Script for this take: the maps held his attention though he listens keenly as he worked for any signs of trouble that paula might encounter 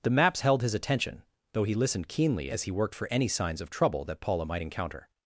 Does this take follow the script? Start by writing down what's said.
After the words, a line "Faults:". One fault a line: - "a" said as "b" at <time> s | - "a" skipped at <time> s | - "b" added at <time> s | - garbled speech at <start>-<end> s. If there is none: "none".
the maps held his attention though he listened keenly as he worked for any signs of trouble that paula might encounter
Faults:
- "listens" said as "listened" at 1.7 s